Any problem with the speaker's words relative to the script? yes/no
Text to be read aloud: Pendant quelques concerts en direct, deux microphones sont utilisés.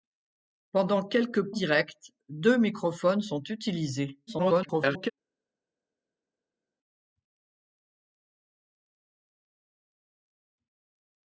yes